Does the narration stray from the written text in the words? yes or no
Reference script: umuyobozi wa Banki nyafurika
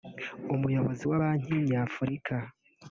no